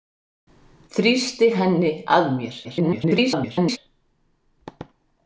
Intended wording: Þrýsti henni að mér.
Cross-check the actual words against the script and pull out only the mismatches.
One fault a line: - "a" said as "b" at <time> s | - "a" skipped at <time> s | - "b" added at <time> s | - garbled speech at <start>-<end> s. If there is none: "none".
- garbled speech at 2.6-3.8 s